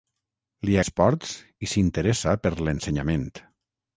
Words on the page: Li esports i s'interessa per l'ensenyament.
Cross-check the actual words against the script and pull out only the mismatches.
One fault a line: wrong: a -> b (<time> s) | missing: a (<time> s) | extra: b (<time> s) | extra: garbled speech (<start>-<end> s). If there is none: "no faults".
no faults